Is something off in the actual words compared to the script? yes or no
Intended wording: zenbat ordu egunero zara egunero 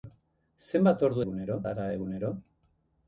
no